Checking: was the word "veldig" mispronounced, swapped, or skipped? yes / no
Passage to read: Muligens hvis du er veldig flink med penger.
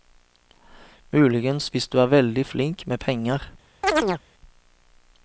no